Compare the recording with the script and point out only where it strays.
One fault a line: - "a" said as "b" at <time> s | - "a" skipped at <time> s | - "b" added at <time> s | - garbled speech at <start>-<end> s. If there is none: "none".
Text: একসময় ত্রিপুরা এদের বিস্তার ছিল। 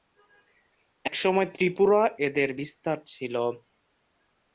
none